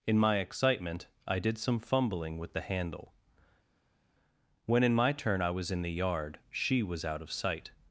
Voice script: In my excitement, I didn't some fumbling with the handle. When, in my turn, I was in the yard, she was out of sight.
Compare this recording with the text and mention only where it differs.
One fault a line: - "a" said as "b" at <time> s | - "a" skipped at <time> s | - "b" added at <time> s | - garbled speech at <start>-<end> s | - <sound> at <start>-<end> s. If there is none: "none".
- "didn't" said as "did" at 1.4 s